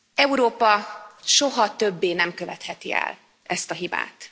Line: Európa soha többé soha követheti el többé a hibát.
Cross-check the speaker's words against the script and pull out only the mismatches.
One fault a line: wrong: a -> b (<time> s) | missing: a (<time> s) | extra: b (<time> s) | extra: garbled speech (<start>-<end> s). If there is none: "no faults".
wrong: soha -> nem (2.1 s)
wrong: többé -> ezt (3.4 s)